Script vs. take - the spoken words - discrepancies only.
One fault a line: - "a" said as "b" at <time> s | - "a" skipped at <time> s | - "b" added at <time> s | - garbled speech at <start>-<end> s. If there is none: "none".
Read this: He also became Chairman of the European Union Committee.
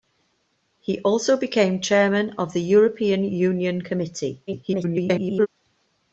- garbled speech at 4.5-5.5 s